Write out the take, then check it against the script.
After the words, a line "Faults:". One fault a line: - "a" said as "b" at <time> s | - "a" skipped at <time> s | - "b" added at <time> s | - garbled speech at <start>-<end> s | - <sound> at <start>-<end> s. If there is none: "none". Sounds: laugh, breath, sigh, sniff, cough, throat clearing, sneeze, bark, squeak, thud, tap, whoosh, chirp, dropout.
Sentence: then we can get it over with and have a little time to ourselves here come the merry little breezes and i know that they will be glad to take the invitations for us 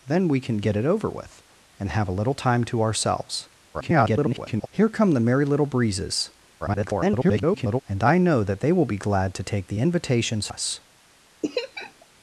then we can get it over with and have a little time to ourselves [garbled] here come the merry little breezes [garbled] and i know that they will be glad to take the invitations us
Faults:
- garbled speech at 3.7-4.7 s
- garbled speech at 6.6-7.8 s
- "for" skipped at 10.5 s
- laugh at 11.4-12.1 s